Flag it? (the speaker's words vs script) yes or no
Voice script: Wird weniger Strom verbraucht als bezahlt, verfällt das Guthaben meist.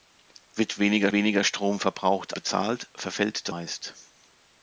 yes